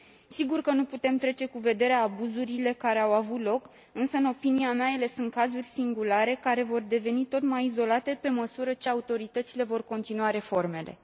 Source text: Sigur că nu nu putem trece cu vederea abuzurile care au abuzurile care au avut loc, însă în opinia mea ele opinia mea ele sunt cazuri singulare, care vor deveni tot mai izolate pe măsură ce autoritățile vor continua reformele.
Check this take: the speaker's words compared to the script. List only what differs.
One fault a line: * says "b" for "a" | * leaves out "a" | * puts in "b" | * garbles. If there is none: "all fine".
* leaves out "nu"
* leaves out "abuzurile care au"
* leaves out "opinia mea ele"